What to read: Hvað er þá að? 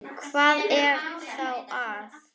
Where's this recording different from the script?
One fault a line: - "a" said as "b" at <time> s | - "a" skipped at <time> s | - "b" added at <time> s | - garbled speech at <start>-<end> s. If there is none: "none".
none